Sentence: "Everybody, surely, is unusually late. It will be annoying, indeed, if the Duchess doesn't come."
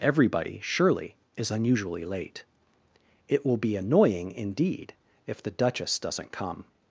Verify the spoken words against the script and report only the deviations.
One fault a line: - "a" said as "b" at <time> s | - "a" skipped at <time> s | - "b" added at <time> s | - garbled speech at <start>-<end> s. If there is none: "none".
none